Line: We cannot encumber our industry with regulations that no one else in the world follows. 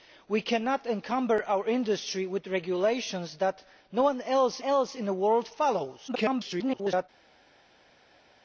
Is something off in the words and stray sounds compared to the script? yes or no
yes